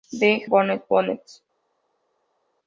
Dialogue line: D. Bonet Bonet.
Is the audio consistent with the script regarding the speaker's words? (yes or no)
yes